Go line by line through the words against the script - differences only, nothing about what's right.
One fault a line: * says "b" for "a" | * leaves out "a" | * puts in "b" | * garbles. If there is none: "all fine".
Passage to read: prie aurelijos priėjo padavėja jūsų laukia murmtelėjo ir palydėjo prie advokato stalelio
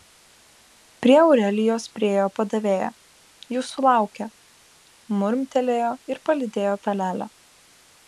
* leaves out "prie advokato"